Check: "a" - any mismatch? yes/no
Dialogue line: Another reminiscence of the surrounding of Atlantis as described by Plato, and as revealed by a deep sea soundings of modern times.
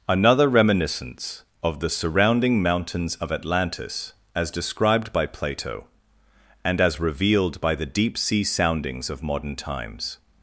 yes